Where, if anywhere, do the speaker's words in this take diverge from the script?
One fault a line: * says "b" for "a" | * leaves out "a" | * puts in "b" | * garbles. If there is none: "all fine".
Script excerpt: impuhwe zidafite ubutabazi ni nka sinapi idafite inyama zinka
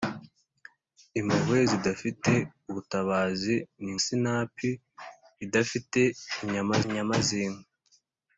* leaves out "nka"
* puts in "inyama"